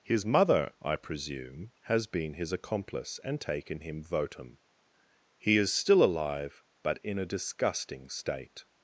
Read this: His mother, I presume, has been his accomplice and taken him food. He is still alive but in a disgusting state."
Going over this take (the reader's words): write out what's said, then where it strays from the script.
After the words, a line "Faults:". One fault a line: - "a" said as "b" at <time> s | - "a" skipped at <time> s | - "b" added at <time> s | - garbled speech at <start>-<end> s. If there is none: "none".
His mother, I presume, has been his accomplice and taken him votum. He is still alive but in a disgusting state."
Faults:
- "food" said as "votum" at 4.0 s